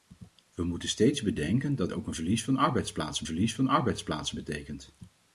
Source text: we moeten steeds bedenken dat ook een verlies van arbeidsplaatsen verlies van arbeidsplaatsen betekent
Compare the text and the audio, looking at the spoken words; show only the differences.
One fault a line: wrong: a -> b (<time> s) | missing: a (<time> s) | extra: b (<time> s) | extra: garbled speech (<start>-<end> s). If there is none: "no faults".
no faults